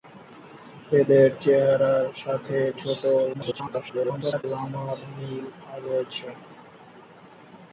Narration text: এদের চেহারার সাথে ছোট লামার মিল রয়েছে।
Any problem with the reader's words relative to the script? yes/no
yes